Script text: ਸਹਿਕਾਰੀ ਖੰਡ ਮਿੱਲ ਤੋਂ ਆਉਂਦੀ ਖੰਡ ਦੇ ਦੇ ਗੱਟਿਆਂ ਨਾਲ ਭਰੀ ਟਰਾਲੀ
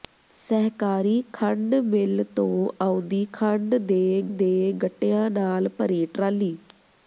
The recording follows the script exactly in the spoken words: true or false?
true